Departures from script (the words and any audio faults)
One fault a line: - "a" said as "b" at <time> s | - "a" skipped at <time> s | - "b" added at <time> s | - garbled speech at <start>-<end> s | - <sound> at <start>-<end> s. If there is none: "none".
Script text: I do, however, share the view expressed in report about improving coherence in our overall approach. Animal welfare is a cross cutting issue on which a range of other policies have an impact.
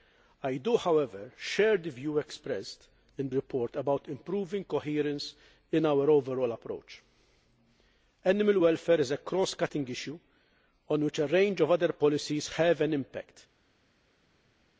none